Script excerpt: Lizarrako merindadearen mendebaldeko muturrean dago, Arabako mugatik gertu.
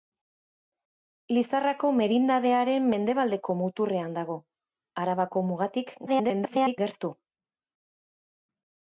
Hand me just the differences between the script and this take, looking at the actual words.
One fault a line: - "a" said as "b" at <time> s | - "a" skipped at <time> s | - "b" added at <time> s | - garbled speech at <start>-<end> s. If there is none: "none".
- garbled speech at 6.1-6.8 s